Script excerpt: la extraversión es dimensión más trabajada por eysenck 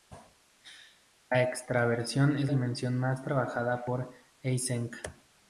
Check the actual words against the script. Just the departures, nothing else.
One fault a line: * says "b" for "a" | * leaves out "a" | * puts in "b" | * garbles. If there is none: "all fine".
all fine